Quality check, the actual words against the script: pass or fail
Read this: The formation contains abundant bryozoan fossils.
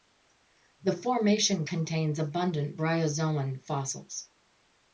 pass